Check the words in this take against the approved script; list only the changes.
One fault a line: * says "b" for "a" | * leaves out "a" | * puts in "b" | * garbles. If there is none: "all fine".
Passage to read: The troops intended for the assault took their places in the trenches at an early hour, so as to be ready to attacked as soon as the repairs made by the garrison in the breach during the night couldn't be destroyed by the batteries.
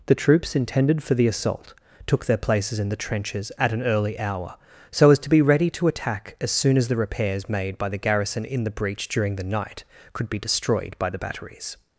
* says "attack" for "attacked"
* says "could" for "couldn't"